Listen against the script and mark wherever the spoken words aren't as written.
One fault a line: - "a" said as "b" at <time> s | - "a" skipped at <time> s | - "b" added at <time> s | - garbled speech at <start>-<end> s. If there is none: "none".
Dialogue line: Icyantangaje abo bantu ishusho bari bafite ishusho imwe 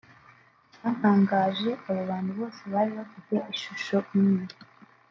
- "ishusho" said as "bose" at 2.4 s